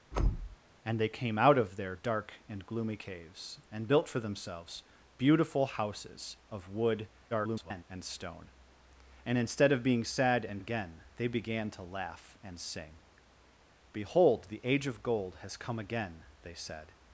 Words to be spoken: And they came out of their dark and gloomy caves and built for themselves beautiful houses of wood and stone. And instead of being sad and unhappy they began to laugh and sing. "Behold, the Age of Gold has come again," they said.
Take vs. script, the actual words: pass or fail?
fail